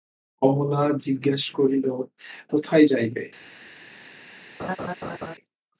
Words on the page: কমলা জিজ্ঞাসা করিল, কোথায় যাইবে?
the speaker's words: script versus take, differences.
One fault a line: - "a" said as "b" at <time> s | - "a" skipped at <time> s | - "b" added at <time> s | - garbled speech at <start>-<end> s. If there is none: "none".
none